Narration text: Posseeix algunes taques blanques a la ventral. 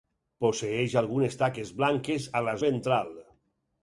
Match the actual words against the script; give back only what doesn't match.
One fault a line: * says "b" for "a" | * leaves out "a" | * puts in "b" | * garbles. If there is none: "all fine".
all fine